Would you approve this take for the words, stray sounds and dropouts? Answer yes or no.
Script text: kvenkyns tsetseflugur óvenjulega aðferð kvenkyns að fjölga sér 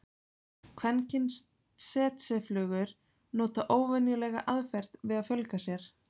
no